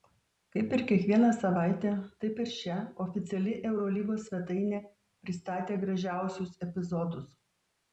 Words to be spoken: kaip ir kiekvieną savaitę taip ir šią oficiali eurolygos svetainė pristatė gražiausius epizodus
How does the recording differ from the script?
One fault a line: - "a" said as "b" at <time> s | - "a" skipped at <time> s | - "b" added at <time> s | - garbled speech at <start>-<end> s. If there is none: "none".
none